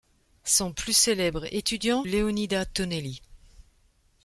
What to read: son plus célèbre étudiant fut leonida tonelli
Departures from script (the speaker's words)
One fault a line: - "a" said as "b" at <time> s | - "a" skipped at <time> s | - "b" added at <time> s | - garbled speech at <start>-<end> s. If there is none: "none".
- "fut" skipped at 2.0 s